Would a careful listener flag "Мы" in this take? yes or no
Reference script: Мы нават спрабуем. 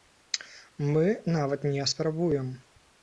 no